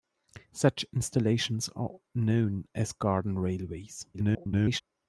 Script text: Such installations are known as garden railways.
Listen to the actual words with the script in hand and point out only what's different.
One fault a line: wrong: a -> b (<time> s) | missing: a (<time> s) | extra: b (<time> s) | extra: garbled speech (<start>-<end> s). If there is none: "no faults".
extra: garbled speech (4.1-4.8 s)